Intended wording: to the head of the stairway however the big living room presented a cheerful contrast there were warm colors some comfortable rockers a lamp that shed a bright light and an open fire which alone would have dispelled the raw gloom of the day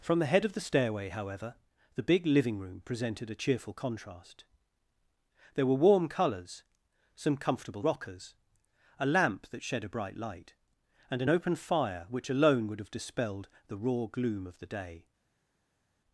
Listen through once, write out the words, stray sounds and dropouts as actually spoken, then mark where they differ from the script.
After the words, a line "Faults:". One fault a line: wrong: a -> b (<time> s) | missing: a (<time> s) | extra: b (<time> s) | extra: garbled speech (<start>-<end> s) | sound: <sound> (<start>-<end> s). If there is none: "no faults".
from the head of the stairway however the big living room presented a cheerful contrast there were warm colors some comfortable rockers a lamp that shed a bright light and an open fire which alone would have dispelled the raw gloom of the day
Faults:
wrong: to -> from (0.0 s)